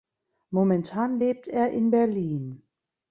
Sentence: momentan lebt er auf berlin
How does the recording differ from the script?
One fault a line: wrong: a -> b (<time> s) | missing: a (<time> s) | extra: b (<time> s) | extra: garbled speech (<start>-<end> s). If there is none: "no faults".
wrong: auf -> in (1.7 s)